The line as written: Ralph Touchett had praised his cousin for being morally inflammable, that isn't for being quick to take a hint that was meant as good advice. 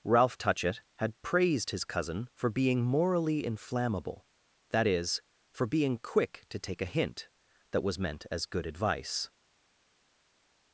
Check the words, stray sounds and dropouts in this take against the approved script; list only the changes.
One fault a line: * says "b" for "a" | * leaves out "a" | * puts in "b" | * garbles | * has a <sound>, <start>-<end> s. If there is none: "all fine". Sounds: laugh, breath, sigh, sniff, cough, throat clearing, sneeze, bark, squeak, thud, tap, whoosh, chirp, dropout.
* says "is" for "isn't"